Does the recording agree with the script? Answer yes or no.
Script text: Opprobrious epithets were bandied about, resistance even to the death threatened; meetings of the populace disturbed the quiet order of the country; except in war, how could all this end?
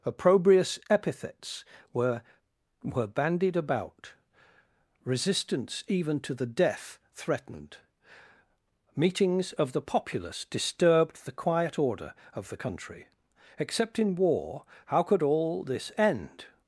no